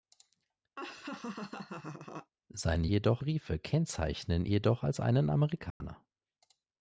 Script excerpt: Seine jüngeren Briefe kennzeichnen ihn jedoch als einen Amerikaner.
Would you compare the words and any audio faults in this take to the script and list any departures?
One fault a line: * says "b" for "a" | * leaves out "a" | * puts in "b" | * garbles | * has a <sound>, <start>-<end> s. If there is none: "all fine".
* has a laugh, 0.8-2.3 s
* says "jedoch" for "jüngeren"
* leaves out "ihn"
* has a dropout, 5.7-5.8 s